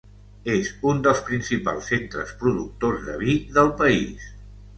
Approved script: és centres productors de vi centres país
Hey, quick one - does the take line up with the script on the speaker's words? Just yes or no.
no